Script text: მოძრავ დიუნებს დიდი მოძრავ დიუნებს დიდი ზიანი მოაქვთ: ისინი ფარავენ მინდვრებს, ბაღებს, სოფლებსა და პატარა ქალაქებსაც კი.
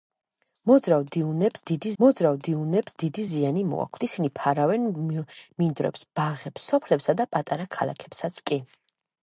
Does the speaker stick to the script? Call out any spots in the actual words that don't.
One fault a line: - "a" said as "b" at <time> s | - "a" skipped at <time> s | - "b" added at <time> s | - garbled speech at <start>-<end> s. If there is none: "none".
none